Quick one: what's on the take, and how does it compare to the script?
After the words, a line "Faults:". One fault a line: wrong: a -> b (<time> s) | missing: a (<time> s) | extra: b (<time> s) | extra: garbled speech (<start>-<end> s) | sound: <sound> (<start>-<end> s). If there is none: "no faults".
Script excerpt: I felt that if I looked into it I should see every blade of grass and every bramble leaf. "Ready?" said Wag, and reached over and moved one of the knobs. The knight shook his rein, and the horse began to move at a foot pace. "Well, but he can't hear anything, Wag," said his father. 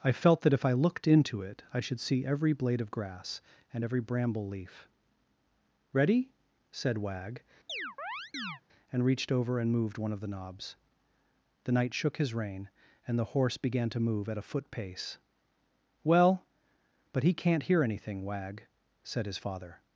I felt that if I looked into it I should see every blade of grass and every bramble leaf. "Ready?" said Wag, and reached over and moved one of the knobs. The knight shook his rein, and the horse began to move at a foot pace. "Well, but he can't hear anything, Wag," said his father.
Faults:
sound: chirp (7.7-8.6 s)